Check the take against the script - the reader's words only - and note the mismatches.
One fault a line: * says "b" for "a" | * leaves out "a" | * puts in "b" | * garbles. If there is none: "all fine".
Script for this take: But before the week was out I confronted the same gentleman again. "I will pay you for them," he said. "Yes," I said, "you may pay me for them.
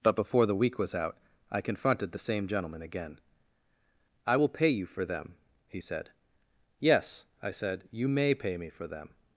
all fine